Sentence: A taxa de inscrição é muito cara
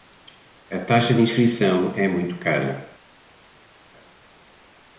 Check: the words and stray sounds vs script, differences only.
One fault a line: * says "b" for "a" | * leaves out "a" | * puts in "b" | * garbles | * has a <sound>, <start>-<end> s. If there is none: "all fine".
all fine